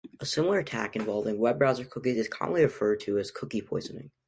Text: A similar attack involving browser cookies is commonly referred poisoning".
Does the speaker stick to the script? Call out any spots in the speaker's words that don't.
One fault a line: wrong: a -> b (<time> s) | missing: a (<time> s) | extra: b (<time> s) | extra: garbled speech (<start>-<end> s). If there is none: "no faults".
extra: web (1.4 s)
extra: to as cookie (3.0 s)